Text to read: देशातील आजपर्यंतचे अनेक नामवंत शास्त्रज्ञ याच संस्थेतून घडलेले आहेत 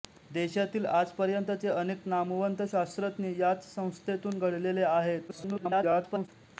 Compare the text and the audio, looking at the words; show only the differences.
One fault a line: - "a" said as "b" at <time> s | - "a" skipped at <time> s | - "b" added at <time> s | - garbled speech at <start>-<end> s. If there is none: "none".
- garbled speech at 5.3-6.3 s